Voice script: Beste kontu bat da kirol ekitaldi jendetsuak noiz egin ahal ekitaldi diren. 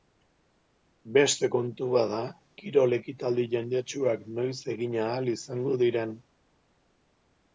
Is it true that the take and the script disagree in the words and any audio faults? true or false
true